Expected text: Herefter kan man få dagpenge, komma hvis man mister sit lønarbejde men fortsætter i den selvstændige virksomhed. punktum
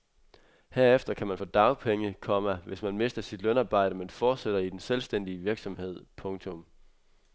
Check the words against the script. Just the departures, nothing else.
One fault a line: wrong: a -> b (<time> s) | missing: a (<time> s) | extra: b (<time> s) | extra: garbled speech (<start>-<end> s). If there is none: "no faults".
no faults